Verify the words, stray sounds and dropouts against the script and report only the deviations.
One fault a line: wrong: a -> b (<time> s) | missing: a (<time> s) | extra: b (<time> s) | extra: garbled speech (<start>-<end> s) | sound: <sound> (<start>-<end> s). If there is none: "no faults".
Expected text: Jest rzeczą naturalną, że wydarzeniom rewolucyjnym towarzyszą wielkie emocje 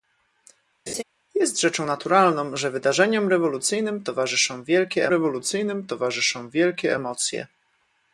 sound: laugh (0.9-1.0 s)
extra: rewolucyjnym towarzyszą wielkie (5.1 s)